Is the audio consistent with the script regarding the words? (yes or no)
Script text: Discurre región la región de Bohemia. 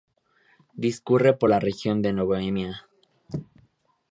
no